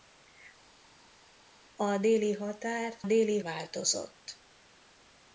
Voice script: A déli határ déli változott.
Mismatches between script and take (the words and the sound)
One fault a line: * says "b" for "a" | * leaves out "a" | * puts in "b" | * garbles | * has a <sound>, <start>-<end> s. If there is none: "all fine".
all fine